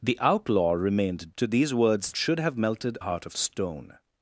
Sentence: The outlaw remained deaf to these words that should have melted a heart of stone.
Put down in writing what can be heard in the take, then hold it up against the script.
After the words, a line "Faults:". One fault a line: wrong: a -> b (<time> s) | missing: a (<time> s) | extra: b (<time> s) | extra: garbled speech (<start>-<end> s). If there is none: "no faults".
The outlaw remained to these words should have melted heart of stone.
Faults:
missing: deaf (1.4 s)
missing: that (2.1 s)
missing: a (3.0 s)